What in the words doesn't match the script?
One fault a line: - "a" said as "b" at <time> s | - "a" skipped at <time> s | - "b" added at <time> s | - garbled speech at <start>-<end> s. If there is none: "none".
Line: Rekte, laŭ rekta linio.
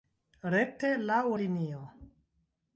- "rekta" skipped at 1.2 s